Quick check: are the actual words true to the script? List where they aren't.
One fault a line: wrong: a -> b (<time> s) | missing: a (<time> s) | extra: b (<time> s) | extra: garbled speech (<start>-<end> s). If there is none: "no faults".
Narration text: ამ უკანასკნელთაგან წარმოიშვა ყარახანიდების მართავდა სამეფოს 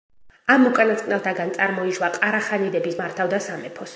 no faults